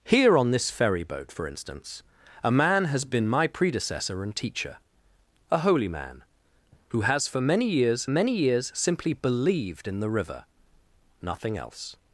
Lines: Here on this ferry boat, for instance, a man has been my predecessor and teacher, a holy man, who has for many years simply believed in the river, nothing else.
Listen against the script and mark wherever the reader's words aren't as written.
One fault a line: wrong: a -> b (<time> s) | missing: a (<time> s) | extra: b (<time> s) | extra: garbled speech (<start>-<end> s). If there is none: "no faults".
extra: many years (8.1 s)